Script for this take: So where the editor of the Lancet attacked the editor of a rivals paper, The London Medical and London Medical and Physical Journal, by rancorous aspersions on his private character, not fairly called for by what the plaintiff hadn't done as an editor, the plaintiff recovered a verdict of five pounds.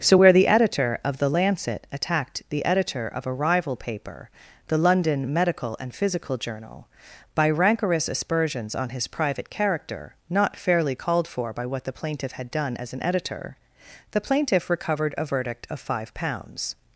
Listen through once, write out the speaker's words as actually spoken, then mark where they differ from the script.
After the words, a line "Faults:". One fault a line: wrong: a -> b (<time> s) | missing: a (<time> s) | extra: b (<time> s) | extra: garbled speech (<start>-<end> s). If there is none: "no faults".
So where the editor of the Lancet attacked the editor of a rival paper, The London Medical and Physical Journal, by rancorous aspersions on his private character, not fairly called for by what the plaintiff had done as an editor, the plaintiff recovered a verdict of five pounds.
Faults:
wrong: rivals -> rival (3.3 s)
missing: London Medical and (5.9 s)
wrong: hadn't -> had (12.3 s)